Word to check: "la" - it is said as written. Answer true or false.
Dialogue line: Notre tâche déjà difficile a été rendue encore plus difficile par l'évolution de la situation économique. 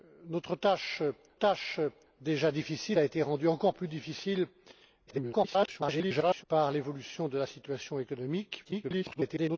true